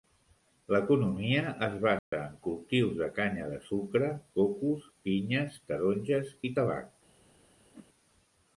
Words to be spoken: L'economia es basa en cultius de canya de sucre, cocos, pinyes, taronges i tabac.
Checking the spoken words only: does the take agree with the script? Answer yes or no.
yes